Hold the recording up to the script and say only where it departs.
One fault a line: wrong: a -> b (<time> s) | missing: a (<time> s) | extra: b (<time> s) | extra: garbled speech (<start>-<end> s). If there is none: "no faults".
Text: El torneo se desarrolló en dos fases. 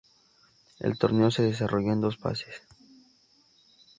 no faults